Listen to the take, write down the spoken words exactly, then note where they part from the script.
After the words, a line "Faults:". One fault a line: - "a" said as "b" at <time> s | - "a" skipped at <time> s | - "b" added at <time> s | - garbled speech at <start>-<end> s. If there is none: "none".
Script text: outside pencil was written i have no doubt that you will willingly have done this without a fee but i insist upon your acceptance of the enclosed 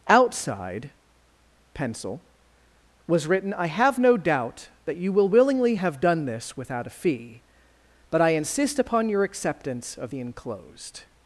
outside pencil was written i have no doubt that you will willingly have done this without a fee but i insist upon your acceptance of the enclosed
Faults:
none